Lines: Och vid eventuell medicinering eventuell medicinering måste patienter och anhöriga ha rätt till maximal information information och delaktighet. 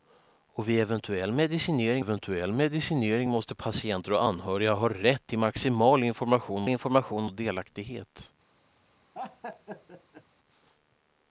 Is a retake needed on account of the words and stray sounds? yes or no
yes